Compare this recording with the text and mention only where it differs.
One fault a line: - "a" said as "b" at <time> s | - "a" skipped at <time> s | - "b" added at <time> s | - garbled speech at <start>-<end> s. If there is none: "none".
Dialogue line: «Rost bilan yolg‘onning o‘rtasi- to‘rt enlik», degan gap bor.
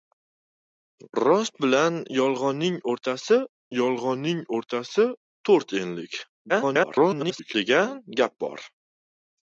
- "yolg‘onning o‘rtasi" added at 3.8 s
- garbled speech at 6.5-7.5 s